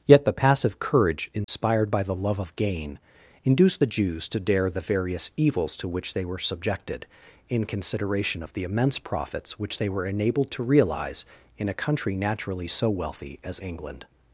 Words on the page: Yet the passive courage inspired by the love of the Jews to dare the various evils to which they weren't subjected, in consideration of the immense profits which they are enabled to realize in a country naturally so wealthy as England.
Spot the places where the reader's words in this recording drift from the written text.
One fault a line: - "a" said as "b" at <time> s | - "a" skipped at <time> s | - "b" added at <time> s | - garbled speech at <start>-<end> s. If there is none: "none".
- "gain induced" added at 2.5 s
- "weren't" said as "were" at 6.2 s
- "are" said as "were" at 9.9 s